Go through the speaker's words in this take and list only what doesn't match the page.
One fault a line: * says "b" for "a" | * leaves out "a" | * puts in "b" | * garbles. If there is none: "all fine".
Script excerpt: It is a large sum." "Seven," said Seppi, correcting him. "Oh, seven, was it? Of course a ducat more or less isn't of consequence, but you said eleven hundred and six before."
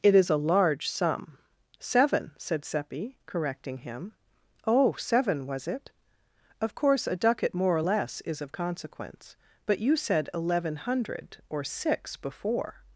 * says "is" for "isn't"
* says "or" for "and"